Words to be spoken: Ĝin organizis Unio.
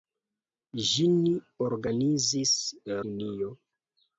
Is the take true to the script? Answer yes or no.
yes